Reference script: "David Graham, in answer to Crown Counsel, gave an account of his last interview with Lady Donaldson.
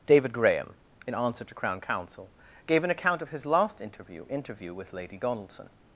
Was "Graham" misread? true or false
false